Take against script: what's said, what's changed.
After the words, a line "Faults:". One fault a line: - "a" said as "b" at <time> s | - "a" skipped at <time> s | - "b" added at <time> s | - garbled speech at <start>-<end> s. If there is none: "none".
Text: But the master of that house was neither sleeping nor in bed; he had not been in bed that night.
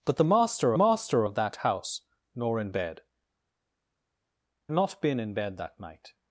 But the master master of that house nor in bed; not been in bed that night.
Faults:
- "master" added at 0.7 s
- "was neither sleeping" skipped at 2.0 s
- "he had" skipped at 3.0 s